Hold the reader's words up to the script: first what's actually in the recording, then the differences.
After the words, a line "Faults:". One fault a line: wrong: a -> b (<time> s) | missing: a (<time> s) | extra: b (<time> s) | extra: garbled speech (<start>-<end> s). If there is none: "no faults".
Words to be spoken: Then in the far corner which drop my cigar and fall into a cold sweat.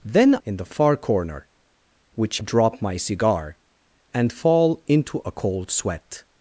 Then in the far corner which drop my cigar and fall into a cold sweat.
Faults:
no faults